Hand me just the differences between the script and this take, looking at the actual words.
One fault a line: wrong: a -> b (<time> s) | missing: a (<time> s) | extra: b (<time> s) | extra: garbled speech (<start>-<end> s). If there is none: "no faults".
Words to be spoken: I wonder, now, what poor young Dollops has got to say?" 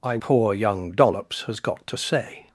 missing: wonder now what (0.2 s)